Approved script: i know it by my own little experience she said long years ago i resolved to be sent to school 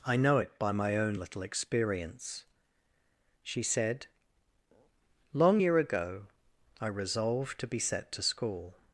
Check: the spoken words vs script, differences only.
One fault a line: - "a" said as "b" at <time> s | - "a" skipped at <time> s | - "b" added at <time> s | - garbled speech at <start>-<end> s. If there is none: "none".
- "years" said as "year" at 5.6 s
- "sent" said as "set" at 7.8 s